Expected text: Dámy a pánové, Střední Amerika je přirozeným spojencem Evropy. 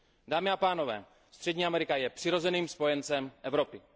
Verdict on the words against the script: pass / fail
pass